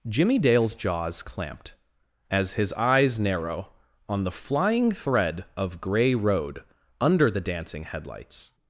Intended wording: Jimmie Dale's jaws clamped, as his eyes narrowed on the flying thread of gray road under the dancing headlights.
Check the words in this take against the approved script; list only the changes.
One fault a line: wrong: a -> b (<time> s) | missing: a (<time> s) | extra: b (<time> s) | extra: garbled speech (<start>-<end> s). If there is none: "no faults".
wrong: narrowed -> narrow (3.2 s)